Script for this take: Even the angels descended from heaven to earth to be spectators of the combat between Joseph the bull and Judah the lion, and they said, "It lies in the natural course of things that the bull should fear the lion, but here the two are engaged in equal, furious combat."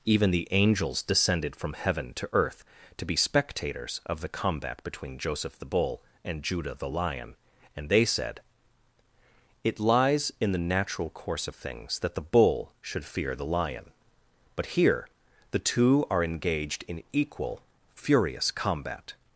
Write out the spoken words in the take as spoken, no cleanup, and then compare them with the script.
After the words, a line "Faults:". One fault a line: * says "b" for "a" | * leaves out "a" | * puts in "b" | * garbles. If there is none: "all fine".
Even the angels descended from heaven to earth to be spectators of the combat between Joseph the bull and Judah the lion, and they said, "It lies in the natural course of things that the bull should fear the lion, but here the two are engaged in equal, furious combat."
Faults:
all fine